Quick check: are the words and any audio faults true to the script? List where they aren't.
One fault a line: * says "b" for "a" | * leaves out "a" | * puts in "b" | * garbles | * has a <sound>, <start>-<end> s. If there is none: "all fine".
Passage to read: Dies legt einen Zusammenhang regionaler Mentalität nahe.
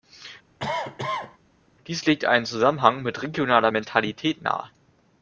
* has a cough, 0.6-1.4 s
* puts in "mit"